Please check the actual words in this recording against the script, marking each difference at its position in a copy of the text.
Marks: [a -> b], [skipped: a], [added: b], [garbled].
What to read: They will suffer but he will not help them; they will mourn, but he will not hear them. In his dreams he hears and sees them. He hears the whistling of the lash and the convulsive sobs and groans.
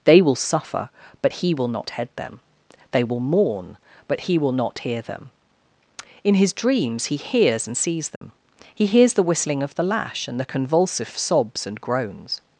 They will suffer but he will not [help -> head] them; they will mourn, but he will not hear them. In his dreams he hears and sees them. He hears the whistling of the lash and the convulsive sobs and groans.